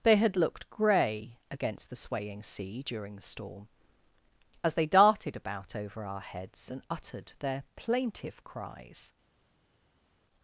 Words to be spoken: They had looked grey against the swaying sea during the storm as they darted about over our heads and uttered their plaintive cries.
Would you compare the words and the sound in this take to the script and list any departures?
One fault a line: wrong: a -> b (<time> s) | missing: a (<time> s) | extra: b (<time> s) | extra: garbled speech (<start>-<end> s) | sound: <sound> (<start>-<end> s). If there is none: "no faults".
no faults